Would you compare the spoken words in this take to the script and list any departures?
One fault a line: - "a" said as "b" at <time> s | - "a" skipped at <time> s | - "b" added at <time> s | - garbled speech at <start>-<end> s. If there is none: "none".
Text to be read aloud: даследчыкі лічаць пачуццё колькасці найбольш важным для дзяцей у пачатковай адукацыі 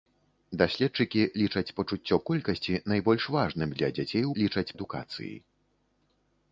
- "пачатковай" said as "лічаць" at 4.4 s